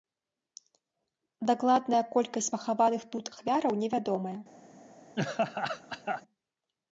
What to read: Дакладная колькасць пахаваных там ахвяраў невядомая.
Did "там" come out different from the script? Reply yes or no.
yes